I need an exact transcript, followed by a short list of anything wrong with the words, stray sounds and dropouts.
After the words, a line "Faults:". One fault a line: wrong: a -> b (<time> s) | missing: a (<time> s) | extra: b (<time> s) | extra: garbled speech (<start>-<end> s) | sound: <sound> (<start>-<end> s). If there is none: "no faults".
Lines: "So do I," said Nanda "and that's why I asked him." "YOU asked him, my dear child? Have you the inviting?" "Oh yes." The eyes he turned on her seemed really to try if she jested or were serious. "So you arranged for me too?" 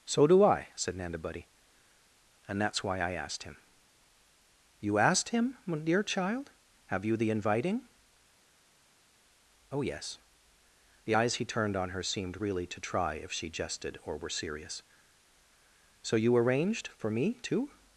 "So do I," said Nanda buddy "and that's why I asked him." "YOU asked him, my dear child? Have you the inviting?" "Oh yes." The eyes he turned on her seemed really to try if she jested or were serious. "So you arranged for me too?"
Faults:
extra: buddy (1.2 s)